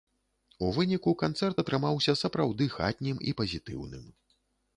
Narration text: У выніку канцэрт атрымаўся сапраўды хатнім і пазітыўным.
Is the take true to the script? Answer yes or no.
yes